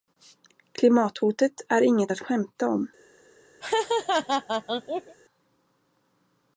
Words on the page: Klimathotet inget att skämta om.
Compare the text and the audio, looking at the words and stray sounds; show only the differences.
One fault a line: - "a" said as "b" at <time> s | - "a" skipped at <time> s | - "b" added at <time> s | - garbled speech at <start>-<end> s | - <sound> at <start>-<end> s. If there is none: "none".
- "är" added at 1.7 s
- laugh at 3.6-5.2 s